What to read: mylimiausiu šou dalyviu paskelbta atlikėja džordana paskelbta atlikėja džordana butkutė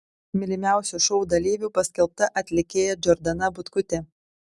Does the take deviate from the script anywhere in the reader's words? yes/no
yes